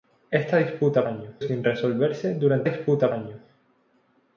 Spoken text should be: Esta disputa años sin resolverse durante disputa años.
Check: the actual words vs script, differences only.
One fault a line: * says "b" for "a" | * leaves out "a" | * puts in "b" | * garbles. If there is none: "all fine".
all fine